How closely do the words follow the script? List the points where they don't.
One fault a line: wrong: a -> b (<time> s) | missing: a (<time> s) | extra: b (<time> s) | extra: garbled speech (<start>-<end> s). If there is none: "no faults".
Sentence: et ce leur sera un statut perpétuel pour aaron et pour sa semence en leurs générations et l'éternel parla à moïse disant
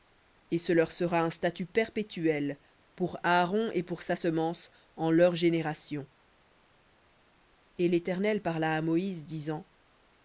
no faults